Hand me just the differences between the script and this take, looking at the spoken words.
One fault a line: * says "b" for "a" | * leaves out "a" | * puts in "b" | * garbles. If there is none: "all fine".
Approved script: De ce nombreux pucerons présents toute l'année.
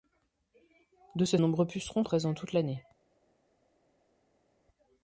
all fine